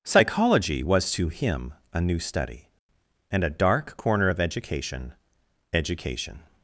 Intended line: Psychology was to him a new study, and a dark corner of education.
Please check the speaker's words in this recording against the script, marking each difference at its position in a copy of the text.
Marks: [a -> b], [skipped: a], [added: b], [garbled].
Psychology was to him a new study, and a dark corner of education. [added: education]